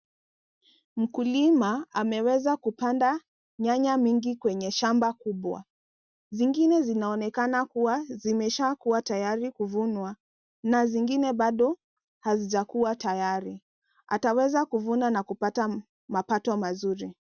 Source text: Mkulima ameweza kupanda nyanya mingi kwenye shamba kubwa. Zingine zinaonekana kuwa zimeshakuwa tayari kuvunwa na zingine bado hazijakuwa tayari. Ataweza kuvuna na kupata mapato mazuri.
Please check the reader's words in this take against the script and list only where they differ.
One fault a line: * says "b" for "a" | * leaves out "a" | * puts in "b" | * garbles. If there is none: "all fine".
all fine